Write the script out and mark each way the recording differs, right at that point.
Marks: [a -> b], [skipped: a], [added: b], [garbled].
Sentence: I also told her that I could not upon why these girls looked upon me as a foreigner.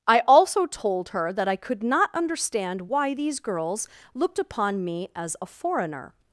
I also told her that I could not [upon -> understand] why these girls looked upon me as a foreigner.